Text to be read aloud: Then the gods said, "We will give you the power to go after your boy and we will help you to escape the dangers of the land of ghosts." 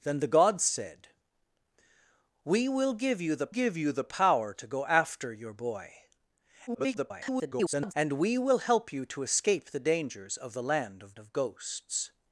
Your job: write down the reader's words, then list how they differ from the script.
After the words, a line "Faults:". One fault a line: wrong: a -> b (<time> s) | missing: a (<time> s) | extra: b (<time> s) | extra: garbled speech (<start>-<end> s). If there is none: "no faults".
Then the gods said, "We will give you the give you the power to go after your boy [garbled] and we will help you to escape the dangers of the land of of ghosts."
Faults:
extra: give you the (3.5 s)
extra: garbled speech (6.7-7.9 s)
extra: of (11.2 s)